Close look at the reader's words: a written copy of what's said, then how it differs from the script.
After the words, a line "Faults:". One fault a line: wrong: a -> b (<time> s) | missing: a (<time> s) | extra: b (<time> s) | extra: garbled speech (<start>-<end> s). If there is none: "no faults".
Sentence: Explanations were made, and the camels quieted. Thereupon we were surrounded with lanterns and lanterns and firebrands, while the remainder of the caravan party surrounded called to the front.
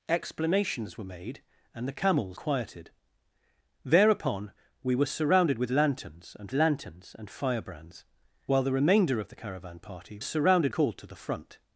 Explanations were made, and the camels quieted. Thereupon we were surrounded with lanterns and lanterns and firebrands, while the remainder of the caravan party surrounded called to the front.
Faults:
no faults